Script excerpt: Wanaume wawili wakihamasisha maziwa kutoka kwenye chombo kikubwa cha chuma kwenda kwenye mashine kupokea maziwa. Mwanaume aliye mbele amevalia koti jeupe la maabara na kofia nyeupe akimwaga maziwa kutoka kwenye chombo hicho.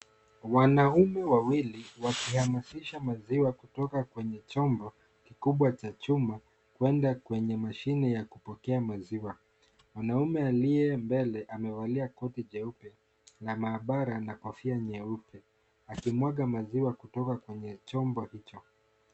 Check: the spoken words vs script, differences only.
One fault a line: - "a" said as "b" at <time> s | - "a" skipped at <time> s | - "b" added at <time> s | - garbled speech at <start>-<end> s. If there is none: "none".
- "ya" added at 8.1 s